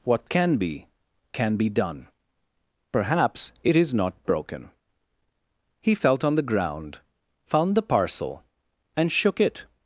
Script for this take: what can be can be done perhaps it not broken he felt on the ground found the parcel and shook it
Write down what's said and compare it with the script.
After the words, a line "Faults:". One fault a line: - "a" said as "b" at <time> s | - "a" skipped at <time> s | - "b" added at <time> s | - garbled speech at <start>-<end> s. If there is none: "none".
what can be can be done perhaps it is not broken he felt on the ground found the parcel and shook it
Faults:
- "is" added at 3.8 s